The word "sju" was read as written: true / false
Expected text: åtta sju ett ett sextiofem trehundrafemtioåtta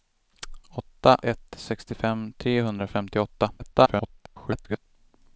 false